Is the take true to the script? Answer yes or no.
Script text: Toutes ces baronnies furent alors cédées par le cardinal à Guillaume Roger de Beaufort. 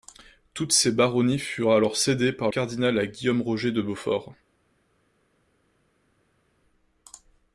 no